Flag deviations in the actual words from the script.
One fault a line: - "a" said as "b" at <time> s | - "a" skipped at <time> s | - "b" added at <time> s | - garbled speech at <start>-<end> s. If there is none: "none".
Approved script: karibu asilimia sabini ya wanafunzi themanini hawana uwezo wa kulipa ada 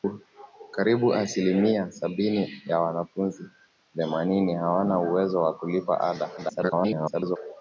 - garbled speech at 6.4-7.4 s